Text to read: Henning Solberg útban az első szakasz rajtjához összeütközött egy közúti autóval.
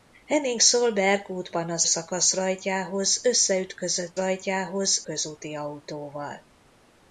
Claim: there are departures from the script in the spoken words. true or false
true